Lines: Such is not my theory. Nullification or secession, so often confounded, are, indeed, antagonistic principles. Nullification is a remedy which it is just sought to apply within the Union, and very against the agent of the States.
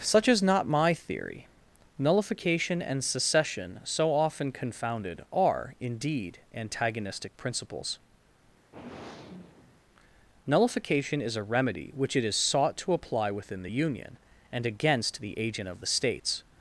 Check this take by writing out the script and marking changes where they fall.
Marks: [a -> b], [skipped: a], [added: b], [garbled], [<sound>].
Such is not my theory. Nullification [or -> and] secession, so often confounded, are, indeed, antagonistic principles. [sigh] Nullification is a remedy which it is [skipped: just] sought to apply within the Union, and [skipped: very] against the agent of the States.